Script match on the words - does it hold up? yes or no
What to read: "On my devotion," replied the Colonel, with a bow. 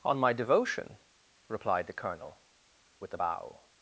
yes